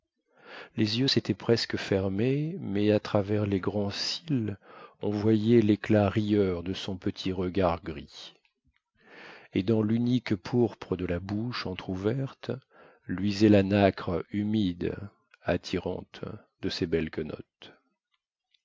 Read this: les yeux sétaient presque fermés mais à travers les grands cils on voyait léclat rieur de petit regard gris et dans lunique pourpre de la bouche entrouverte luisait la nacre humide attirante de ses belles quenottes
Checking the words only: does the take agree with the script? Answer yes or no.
no